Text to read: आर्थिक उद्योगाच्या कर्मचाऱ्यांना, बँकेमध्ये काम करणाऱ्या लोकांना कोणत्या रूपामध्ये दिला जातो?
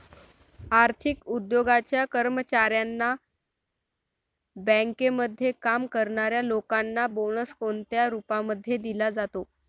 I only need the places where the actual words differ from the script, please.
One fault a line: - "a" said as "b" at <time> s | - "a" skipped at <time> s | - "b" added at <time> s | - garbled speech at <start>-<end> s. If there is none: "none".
- "बोनस" added at 7.1 s